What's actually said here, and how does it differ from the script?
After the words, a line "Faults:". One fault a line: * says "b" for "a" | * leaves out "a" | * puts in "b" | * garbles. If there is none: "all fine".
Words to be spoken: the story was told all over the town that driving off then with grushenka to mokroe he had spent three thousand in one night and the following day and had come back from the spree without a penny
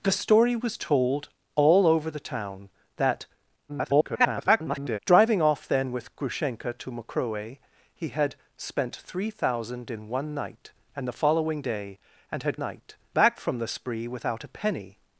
the story was told all over the town that [garbled] driving off then with grushenka to mokroe he had spent three thousand in one night and the following day and had night back from the spree without a penny
Faults:
* garbles
* says "night" for "come"